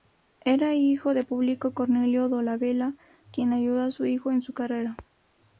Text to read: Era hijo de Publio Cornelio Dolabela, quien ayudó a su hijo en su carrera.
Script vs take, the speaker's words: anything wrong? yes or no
no